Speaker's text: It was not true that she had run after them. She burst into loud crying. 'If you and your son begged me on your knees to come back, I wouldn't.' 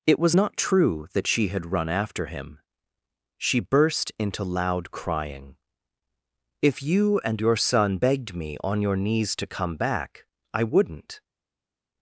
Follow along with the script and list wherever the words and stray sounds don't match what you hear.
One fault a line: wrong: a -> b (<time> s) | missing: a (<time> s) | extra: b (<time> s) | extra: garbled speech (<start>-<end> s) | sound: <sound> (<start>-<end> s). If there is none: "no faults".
wrong: them -> him (2.3 s)